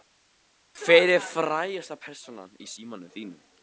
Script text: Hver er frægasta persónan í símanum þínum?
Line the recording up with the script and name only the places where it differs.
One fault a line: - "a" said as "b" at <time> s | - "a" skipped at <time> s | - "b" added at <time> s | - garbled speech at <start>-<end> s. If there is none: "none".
none